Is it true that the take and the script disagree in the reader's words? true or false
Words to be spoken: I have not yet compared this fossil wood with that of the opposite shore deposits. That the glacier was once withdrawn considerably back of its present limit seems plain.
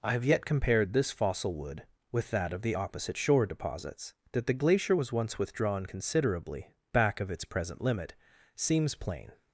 true